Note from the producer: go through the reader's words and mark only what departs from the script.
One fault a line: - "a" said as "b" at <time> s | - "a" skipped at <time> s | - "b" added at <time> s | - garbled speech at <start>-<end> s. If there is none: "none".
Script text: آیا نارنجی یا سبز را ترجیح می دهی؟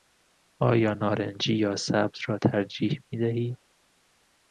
none